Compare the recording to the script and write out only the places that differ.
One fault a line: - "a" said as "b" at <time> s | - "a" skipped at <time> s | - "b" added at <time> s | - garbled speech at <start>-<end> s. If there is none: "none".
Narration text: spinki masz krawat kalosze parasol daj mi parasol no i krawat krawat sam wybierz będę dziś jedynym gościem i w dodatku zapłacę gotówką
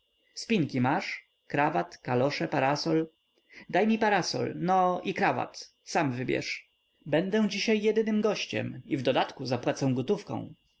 - "krawat" skipped at 5.7 s